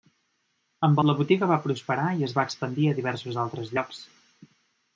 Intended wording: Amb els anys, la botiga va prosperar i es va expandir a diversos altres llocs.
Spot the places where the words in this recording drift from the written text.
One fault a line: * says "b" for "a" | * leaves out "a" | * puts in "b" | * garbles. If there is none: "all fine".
* leaves out "els anys"